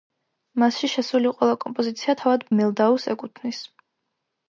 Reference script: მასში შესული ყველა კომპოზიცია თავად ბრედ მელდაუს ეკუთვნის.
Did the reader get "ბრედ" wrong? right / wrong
wrong